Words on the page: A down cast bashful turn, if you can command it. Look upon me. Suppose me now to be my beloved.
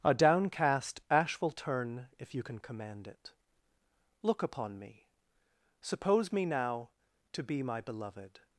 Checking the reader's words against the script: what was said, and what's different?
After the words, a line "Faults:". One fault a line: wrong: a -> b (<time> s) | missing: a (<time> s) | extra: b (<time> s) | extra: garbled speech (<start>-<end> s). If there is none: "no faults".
A downcast ash will turn, if you can command it. Look upon me. Suppose me now to be my beloved.
Faults:
wrong: down cast bashful -> downcast ash will (0.1 s)